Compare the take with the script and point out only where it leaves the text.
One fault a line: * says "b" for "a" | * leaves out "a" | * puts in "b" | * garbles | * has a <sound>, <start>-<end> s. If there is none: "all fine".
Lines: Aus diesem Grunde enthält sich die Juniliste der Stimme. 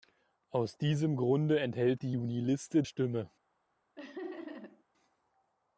* leaves out "sich"
* leaves out "der"
* has a laugh, 4.0-4.8 s